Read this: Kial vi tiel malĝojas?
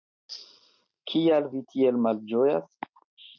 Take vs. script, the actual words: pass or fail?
pass